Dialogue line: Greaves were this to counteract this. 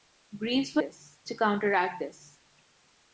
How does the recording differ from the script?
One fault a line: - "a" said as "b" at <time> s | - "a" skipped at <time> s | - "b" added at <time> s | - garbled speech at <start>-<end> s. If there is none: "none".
none